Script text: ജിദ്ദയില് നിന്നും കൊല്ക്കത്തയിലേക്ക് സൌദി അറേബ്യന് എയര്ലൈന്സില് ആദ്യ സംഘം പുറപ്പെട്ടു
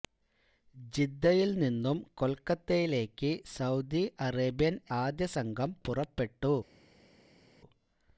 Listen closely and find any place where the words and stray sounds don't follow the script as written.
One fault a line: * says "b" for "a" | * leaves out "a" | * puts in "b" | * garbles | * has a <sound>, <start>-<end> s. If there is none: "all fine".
* leaves out "എയര്ലൈന്സില്"